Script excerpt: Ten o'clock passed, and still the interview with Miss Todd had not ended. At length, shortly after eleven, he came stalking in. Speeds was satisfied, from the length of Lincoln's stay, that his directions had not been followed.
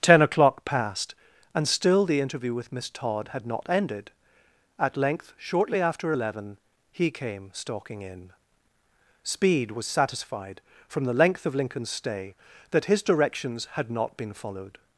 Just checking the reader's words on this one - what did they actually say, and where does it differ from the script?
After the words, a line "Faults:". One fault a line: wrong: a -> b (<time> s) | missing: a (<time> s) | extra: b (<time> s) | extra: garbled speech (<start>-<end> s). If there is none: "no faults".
Ten o'clock passed, and still the interview with Miss Todd had not ended. At length, shortly after eleven, he came stalking in. Speed was satisfied, from the length of Lincoln's stay, that his directions had not been followed.
Faults:
wrong: Speeds -> Speed (9.2 s)